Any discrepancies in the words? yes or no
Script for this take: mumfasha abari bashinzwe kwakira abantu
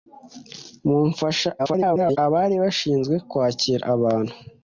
yes